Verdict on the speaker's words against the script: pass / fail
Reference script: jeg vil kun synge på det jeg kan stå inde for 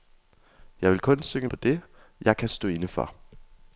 pass